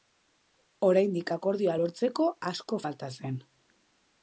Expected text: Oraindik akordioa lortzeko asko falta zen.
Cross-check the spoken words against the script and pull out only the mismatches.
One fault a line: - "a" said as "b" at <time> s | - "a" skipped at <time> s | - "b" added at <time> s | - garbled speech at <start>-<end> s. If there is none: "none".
none